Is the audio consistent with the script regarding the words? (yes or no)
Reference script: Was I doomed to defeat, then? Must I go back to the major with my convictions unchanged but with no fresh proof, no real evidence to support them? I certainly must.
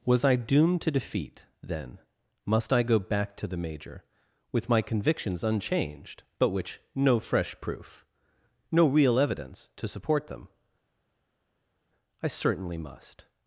no